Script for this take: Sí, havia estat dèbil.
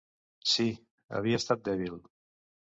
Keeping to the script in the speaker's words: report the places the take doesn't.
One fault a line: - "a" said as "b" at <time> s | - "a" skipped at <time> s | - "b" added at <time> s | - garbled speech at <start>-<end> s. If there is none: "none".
none